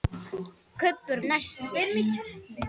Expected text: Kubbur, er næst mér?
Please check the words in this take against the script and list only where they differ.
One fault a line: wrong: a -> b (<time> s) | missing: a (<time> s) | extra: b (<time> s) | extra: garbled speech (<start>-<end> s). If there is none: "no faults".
no faults